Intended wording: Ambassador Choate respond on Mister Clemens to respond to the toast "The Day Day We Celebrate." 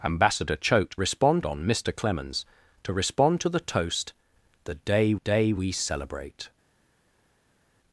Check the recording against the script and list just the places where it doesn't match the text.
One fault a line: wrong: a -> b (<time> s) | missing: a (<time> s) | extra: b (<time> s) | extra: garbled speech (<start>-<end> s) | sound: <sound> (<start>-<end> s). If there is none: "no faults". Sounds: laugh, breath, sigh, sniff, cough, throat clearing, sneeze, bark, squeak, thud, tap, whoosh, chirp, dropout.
no faults